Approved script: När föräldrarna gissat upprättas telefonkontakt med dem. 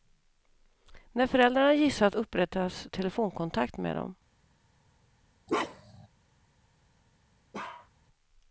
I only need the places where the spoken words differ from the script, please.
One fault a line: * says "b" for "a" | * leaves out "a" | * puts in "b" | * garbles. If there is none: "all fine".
all fine